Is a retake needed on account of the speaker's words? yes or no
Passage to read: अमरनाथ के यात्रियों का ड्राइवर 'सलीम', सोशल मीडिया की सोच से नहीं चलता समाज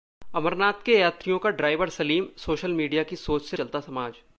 yes